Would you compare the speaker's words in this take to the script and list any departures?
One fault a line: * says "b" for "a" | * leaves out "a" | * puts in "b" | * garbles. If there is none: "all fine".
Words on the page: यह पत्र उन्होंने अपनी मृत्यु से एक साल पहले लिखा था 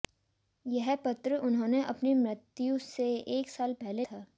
* leaves out "लिखा"